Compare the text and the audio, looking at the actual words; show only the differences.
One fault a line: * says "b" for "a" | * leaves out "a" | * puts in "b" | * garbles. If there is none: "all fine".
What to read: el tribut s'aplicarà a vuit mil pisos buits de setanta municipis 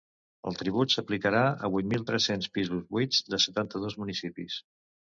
* puts in "tres cents"
* puts in "dos"